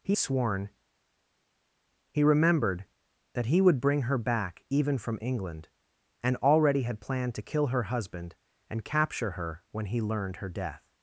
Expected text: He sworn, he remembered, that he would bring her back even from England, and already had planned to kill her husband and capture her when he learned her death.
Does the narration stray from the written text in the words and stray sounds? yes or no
no